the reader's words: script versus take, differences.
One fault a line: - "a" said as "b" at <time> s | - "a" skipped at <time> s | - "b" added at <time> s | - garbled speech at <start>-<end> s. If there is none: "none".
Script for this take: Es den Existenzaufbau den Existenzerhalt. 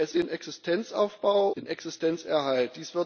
none